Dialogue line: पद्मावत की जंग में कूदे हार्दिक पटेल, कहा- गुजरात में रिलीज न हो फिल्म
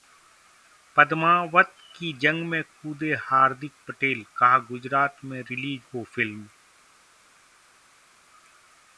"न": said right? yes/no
no